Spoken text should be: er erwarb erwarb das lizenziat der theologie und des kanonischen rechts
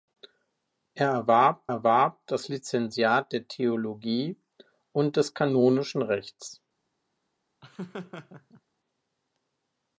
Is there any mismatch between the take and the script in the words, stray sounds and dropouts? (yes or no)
yes